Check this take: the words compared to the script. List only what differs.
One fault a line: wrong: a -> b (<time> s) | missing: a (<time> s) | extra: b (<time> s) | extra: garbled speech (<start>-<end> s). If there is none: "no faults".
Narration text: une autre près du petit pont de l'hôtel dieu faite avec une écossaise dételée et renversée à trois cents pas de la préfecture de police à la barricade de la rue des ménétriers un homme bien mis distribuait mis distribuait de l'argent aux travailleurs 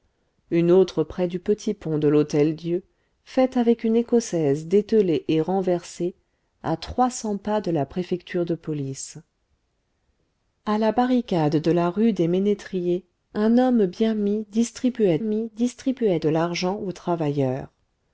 no faults